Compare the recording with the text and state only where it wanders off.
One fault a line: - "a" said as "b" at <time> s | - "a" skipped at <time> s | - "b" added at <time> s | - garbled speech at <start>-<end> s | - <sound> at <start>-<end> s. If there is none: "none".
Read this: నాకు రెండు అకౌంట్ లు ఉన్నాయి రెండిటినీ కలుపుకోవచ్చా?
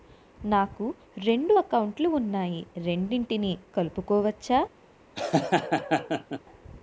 - laugh at 5.2-6.4 s